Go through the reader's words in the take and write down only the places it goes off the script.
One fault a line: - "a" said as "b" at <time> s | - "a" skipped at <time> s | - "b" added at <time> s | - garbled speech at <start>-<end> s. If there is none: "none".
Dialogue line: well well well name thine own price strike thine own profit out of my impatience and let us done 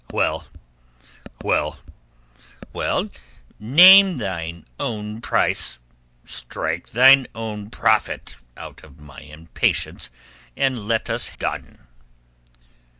none